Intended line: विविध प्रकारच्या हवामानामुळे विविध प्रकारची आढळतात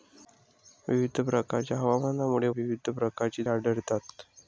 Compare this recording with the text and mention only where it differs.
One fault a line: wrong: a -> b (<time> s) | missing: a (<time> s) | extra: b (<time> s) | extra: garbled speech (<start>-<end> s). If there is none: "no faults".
no faults